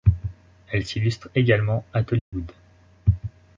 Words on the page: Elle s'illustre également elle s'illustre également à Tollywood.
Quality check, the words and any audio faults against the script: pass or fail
fail